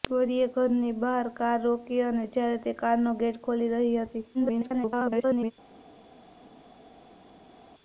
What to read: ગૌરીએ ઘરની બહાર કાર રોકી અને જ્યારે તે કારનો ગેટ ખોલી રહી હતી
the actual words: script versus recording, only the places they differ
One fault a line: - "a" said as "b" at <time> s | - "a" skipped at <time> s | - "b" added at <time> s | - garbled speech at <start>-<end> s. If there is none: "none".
- garbled speech at 4.3-5.5 s